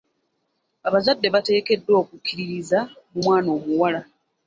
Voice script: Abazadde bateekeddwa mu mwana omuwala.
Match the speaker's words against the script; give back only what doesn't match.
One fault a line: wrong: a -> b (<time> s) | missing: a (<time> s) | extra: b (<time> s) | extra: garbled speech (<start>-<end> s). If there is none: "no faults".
extra: okukkiririza (2.0 s)